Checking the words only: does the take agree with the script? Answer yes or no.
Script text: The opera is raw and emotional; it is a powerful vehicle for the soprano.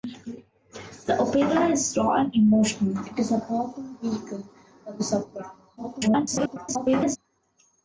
no